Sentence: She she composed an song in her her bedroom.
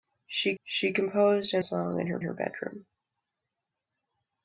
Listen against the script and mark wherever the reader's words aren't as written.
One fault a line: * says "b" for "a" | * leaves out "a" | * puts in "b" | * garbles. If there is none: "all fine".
all fine